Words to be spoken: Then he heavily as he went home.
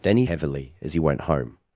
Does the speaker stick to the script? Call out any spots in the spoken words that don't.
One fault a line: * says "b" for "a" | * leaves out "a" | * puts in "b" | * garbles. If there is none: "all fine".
all fine